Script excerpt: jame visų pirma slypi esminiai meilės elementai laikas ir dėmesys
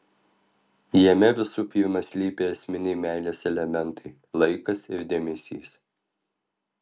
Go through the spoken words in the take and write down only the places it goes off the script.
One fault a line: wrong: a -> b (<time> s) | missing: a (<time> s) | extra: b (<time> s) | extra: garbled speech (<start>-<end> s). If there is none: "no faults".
no faults